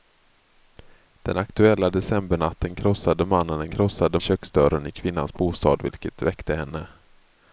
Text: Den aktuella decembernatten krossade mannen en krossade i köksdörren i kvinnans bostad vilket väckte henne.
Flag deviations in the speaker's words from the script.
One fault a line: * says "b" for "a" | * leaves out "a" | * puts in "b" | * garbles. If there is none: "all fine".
all fine